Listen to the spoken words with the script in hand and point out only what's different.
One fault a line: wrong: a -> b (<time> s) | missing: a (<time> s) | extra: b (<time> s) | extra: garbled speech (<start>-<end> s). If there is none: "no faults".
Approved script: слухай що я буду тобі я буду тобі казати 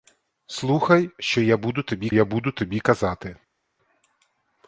no faults